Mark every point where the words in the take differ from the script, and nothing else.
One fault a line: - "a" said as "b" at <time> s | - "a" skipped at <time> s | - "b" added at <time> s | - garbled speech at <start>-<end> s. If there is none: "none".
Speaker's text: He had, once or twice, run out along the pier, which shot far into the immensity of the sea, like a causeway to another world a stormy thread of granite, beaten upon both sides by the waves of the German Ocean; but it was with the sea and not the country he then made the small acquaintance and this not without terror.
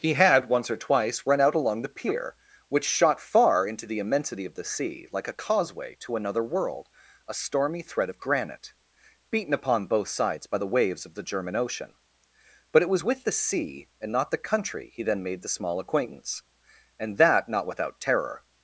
- "this" said as "that" at 17.2 s